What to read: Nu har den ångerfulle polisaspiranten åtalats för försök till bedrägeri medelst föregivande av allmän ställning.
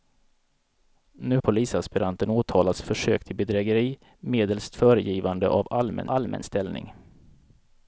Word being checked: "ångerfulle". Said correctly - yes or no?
no